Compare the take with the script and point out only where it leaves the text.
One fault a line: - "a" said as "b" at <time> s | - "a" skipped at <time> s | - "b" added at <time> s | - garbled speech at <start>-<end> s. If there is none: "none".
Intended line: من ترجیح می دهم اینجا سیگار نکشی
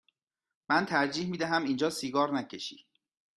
none